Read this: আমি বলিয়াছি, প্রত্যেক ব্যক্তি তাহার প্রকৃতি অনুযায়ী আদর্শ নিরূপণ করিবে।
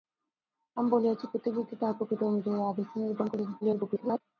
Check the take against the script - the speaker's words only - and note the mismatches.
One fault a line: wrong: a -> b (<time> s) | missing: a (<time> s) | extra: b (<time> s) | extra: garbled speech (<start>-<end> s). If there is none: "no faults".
extra: garbled speech (3.6-4.2 s)